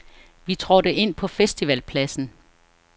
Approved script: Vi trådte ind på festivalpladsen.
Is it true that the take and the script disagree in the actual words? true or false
false